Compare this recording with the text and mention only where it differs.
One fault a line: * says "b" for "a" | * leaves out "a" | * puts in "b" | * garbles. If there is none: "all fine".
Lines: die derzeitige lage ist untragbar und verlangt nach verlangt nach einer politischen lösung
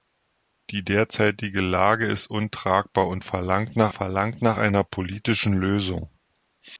all fine